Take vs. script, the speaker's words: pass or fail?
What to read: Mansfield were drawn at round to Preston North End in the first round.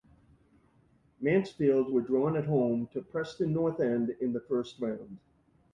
fail